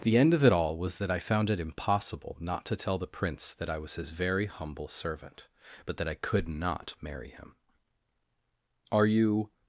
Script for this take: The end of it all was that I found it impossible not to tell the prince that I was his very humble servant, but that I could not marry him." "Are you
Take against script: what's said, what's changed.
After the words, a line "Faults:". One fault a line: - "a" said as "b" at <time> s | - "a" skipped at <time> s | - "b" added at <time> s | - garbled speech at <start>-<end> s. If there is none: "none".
The end of it all was that I found it impossible not to tell the prince that I was his very humble servant, but that I could not marry him." "Are you
Faults:
none